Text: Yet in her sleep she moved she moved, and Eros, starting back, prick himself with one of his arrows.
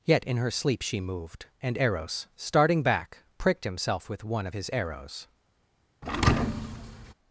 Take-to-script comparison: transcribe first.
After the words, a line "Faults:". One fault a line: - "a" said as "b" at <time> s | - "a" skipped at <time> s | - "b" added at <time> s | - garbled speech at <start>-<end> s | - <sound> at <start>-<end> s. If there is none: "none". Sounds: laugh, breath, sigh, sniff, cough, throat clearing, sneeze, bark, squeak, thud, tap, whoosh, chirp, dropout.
Yet in her sleep she moved, and Eros, starting back, pricked himself with one of his arrows.
Faults:
- "she moved" skipped at 1.4 s
- "prick" said as "pricked" at 3.4 s
- thud at 6.0-7.1 s